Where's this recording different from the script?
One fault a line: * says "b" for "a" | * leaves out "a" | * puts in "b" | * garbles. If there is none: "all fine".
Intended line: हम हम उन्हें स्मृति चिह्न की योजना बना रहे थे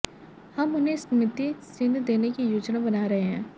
* leaves out "हम"
* puts in "देने"
* says "हैं" for "थे"